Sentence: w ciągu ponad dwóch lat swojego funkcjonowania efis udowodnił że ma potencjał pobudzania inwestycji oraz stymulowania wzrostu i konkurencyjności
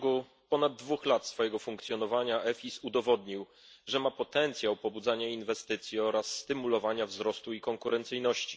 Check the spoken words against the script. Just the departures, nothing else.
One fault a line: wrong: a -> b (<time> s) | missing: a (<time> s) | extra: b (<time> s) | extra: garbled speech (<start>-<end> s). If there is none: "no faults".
no faults